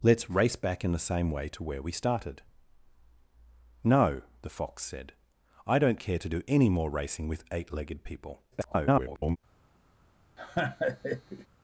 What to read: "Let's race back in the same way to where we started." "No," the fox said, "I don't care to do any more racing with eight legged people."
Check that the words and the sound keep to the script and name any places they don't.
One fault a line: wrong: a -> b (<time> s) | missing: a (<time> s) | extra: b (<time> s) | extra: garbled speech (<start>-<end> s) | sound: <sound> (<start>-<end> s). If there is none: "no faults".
extra: garbled speech (8.5-9.4 s)
sound: laugh (10.4-11.5 s)